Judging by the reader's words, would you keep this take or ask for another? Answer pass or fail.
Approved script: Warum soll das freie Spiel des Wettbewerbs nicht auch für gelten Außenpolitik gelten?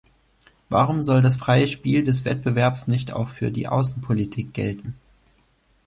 fail